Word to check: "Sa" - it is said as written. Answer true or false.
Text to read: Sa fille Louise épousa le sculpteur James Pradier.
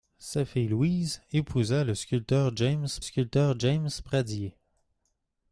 true